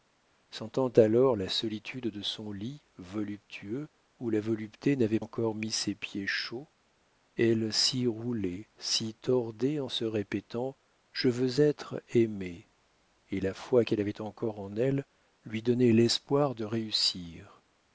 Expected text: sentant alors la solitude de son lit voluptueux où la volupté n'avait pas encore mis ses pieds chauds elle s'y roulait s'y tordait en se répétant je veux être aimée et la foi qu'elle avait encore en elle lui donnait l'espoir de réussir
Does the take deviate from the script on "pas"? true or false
true